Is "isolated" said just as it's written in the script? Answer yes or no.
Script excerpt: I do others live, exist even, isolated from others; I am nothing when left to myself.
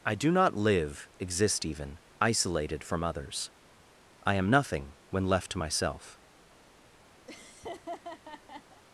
yes